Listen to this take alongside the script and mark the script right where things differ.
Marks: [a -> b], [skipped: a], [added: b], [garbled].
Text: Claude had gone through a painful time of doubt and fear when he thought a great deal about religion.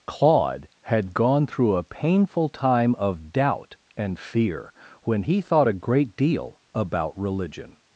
Claude had gone through a painful time of doubt and fear when he thought a great deal about religion.